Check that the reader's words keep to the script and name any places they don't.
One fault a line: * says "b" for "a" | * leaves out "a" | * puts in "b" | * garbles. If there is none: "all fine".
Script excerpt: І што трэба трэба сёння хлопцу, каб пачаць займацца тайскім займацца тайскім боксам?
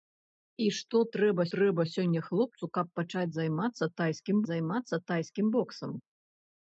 all fine